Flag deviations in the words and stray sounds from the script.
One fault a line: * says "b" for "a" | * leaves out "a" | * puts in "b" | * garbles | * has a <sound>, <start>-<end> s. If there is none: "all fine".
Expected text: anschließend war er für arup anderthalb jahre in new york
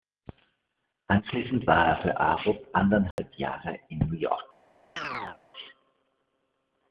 * has a dropout, 3.1-3.2 s
* has a chirp, 5.0-5.4 s